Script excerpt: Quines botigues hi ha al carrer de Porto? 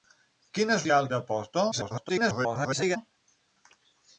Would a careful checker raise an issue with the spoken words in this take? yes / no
yes